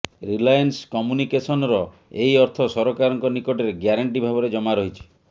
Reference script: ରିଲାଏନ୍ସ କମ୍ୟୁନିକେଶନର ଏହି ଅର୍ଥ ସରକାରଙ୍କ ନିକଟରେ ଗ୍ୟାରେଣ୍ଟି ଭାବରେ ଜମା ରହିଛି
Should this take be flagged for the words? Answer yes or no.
no